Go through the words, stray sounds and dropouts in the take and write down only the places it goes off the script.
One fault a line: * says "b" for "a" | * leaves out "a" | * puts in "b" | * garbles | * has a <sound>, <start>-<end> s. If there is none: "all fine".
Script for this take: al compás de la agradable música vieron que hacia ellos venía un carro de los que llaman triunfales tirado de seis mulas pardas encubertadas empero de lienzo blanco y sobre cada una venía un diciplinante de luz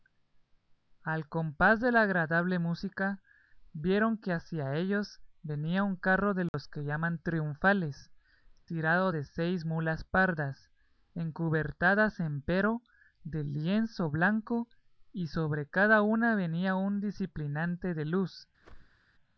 * has a dropout, 6.5-6.5 s
* has a whoosh, 18.6-19.1 s